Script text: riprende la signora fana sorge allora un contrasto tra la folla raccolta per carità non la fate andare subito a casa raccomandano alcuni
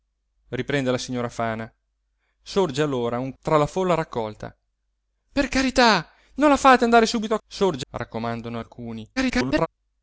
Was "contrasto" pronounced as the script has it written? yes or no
no